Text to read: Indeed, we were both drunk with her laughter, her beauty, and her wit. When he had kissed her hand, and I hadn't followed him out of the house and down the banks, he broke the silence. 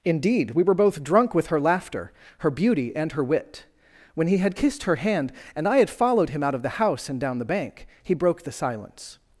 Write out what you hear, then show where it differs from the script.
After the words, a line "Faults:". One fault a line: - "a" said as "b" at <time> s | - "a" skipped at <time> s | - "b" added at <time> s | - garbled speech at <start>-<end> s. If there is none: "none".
Indeed, we were both drunk with her laughter, her beauty, and her wit. When he had kissed her hand, and I had followed him out of the house and down the bank, he broke the silence.
Faults:
- "hadn't" said as "had" at 5.8 s
- "banks" said as "bank" at 7.4 s